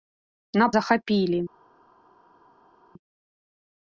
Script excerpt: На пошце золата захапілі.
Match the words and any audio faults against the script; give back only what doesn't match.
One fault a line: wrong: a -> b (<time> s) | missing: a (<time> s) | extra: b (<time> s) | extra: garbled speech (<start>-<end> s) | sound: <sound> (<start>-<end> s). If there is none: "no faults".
missing: пошце золата (0.7 s)